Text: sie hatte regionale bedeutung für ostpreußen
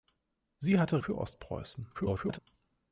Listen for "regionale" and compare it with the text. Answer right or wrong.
wrong